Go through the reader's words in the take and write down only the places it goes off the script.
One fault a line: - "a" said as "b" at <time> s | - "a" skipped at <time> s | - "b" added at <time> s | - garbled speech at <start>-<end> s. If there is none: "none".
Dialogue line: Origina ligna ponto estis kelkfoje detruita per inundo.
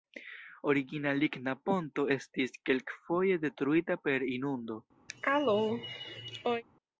none